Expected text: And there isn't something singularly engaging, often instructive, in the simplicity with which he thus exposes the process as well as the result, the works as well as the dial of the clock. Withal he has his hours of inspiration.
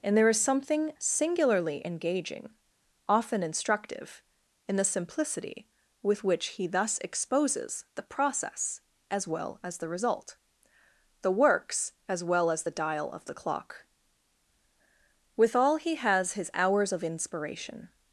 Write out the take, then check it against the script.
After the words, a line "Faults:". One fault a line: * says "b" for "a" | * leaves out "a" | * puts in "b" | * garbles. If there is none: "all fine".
And there is something singularly engaging, often instructive, in the simplicity with which he thus exposes the process as well as the result, the works as well as the dial of the clock. Withal he has his hours of inspiration.
Faults:
* says "is" for "isn't"